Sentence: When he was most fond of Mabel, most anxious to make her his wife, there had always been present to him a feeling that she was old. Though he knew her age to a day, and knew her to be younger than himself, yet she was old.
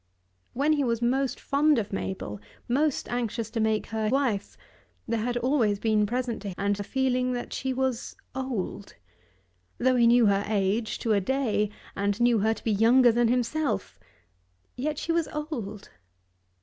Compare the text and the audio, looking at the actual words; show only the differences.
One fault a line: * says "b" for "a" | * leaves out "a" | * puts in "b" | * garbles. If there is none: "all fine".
* leaves out "his"
* says "and" for "him"